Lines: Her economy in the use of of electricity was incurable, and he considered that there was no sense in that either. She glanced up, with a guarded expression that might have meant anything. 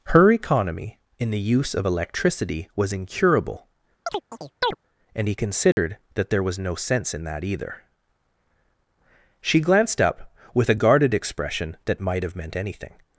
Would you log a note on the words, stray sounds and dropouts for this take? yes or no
yes